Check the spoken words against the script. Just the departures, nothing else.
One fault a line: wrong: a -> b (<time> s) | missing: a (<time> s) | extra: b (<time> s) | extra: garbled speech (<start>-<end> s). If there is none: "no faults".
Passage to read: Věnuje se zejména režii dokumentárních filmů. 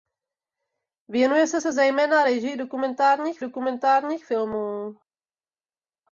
extra: se (1.6 s)
extra: dokumentárních (3.4 s)